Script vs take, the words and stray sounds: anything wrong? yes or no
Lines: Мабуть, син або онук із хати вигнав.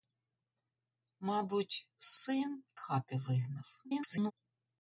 yes